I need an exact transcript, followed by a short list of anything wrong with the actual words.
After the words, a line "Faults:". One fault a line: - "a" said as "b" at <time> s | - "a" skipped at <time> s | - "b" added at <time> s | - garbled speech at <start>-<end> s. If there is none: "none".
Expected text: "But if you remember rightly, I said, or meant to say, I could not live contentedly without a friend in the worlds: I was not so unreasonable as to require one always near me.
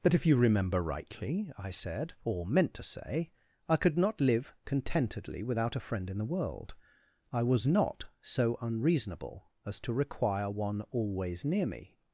"But if you remember rightly, I said, or meant to say, I could not live contentedly without a friend in the world: I was not so unreasonable as to require one always near me.
Faults:
- "worlds" said as "world" at 6.2 s